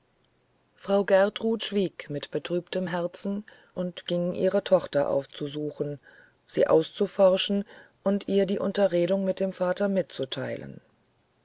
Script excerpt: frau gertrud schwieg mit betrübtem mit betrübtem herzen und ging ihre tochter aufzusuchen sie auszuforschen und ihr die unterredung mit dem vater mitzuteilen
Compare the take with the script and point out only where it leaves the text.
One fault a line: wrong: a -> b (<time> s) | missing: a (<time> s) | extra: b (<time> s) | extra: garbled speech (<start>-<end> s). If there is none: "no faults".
missing: mit betrübtem (2.9 s)